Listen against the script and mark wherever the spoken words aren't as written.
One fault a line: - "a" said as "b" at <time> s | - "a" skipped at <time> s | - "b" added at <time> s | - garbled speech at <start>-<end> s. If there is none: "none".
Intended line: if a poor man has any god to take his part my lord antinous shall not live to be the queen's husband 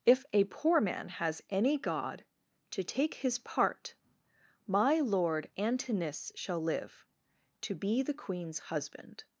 - "not" skipped at 6.6 s